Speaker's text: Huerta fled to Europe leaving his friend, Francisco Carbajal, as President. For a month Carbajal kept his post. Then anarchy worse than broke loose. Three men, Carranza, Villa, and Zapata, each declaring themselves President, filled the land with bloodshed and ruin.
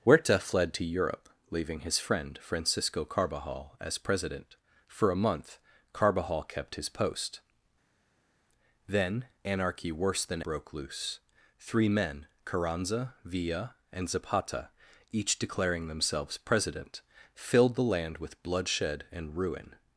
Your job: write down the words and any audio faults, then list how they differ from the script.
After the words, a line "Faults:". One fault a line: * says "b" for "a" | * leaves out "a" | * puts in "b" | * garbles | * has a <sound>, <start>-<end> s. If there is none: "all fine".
Huerta fled to Europe leaving his friend, Francisco Carbajal, as President. For a month Carbajal kept his post. Then anarchy worse than broke loose. Three men, Carranza, Villa, and Zapata, each declaring themselves President, filled the land with bloodshed and ruin.
Faults:
all fine